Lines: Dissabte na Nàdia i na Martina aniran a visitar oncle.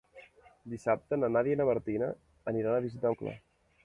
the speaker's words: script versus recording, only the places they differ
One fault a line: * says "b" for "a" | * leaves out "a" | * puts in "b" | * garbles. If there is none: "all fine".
all fine